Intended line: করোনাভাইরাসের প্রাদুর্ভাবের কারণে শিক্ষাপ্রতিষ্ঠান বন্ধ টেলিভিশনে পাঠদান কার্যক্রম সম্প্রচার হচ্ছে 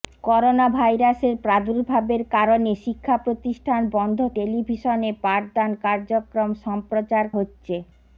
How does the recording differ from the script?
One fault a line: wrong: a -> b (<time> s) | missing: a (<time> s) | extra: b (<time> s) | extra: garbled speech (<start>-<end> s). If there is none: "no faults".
no faults